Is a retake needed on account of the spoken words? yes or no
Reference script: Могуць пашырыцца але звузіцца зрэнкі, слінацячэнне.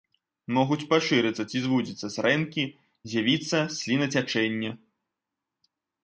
yes